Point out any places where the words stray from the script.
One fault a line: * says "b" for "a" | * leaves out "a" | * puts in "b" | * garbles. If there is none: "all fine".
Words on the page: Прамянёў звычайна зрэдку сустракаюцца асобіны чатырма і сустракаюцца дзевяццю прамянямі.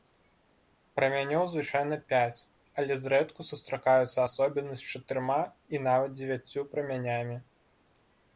* puts in "пяць але"
* puts in "з"
* says "нават" for "сустракаюцца"